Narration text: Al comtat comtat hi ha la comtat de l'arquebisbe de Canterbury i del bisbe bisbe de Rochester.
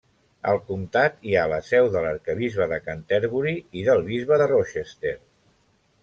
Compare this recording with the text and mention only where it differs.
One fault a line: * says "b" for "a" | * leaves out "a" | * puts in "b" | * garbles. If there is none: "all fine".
* leaves out "comtat"
* says "seu" for "comtat"
* leaves out "bisbe"